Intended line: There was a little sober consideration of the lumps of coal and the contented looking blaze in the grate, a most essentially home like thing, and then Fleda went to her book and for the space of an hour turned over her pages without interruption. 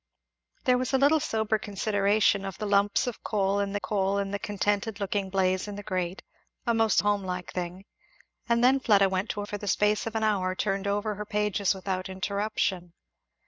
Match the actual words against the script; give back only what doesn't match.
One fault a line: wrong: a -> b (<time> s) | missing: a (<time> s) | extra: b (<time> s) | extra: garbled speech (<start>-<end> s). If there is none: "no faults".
extra: coal and (3.8 s)
missing: essentially (7.0 s)
missing: her book and (9.4 s)